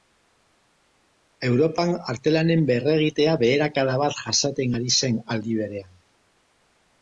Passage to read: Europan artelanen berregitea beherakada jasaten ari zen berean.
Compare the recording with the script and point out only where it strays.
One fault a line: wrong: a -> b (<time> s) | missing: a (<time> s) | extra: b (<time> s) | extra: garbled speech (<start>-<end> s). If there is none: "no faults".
extra: bat (4.0 s)
extra: aldi (5.4 s)